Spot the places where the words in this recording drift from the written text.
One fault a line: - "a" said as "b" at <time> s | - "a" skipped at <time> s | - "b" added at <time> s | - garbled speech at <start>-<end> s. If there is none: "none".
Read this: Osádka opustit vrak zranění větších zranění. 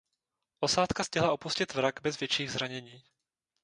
- "stihla" added at 1.0 s
- "zranění" said as "bez" at 2.0 s